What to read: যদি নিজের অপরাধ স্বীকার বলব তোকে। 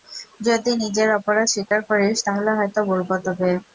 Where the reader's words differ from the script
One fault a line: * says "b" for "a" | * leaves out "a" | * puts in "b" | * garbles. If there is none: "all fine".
* puts in "করিস তাহলে হয়তো"